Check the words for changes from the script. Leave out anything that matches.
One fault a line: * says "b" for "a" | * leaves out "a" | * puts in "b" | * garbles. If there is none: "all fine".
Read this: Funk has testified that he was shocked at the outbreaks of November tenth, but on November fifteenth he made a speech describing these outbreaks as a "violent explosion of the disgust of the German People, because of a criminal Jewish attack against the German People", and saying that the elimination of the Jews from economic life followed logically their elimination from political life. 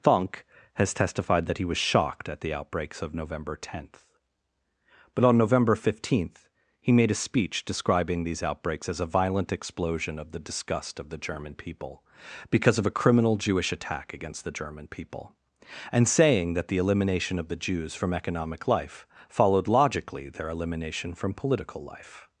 all fine